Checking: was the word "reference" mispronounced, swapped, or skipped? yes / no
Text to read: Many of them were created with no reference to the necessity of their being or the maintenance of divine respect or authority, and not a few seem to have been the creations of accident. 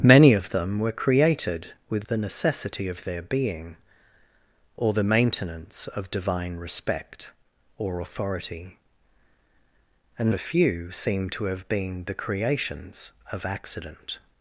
yes